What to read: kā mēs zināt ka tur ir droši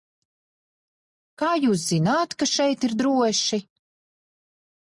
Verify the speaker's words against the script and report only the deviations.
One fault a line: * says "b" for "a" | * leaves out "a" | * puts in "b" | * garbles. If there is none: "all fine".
* says "jūs" for "mēs"
* says "šeit" for "tur"